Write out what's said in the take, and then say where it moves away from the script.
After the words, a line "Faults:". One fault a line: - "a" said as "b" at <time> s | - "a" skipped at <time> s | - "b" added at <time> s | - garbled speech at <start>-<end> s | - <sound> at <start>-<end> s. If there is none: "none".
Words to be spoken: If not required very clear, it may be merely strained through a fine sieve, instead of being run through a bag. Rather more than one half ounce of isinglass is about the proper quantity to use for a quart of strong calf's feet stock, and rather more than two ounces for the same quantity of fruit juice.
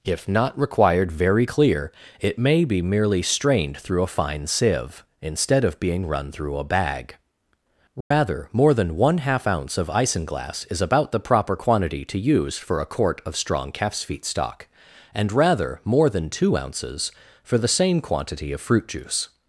If not required very clear, it may be merely strained through a fine sieve, instead of being run through a bag. Rather more than one half ounce of isinglass is about the proper quantity to use for a quart of strong calf's feet stock, and rather more than two ounces for the same quantity of fruit juice.
Faults:
- dropout at 8.0-8.1 s